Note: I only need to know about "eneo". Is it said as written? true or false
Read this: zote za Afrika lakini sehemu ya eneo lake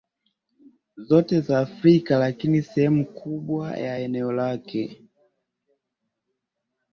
true